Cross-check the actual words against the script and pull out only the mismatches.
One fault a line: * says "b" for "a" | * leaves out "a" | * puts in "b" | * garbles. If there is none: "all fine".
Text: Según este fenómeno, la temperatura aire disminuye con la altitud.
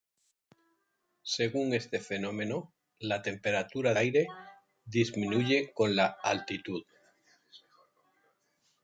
all fine